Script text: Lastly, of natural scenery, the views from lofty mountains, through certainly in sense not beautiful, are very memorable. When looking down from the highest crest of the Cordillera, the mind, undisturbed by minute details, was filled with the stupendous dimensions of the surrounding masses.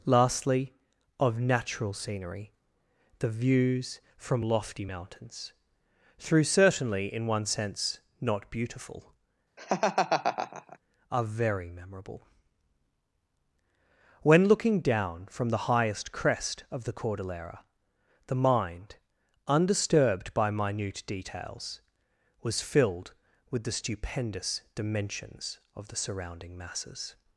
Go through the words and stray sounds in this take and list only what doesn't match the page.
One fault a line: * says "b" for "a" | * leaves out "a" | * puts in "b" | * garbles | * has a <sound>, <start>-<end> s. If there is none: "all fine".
* puts in "one"
* has a laugh, 9.6-10.8 s